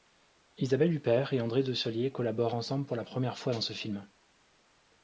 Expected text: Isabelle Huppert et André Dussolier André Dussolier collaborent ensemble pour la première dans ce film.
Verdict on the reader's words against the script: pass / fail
fail